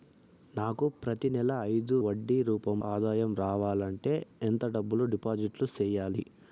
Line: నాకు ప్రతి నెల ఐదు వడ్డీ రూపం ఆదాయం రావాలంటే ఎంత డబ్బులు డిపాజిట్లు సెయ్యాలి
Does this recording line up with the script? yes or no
yes